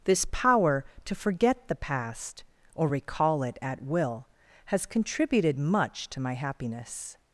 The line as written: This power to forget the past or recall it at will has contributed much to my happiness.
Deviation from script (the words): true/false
false